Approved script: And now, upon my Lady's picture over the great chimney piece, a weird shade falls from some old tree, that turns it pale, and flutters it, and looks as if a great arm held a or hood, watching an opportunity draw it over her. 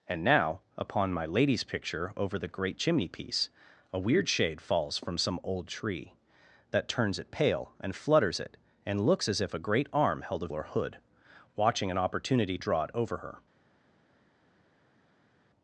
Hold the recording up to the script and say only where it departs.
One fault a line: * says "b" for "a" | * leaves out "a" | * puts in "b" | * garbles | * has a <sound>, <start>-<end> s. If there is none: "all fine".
all fine